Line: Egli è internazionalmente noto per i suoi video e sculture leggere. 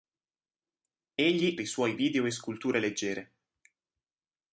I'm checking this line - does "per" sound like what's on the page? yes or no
no